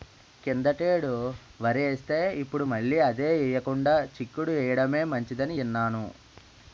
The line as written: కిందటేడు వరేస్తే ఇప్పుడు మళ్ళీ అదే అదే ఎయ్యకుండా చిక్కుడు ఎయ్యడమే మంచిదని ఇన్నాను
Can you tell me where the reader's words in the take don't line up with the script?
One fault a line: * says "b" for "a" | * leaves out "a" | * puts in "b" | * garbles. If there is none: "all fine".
* leaves out "అదే"